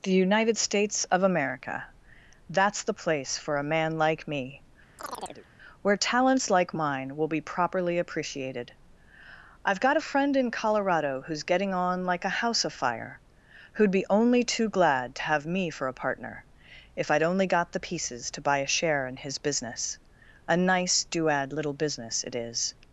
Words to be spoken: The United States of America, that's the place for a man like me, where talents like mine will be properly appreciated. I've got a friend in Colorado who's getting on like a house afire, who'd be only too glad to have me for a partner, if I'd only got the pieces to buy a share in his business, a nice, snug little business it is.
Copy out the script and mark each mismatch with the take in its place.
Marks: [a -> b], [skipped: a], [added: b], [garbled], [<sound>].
The United States of America, that's the place for a man like me, [chirp] where talents like mine will be properly appreciated. I've got a friend in Colorado who's getting on like a house afire, who'd be only too glad to have me for a partner, if I'd only got the pieces to buy a share in his business, a nice, [snug -> duad] little business it is.